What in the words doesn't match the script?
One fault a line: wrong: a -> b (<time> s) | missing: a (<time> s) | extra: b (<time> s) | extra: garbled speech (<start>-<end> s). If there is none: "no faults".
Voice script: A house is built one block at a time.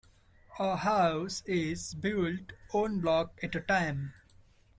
no faults